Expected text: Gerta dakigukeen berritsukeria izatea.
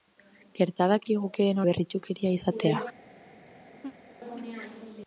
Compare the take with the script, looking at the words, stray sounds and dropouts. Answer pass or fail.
fail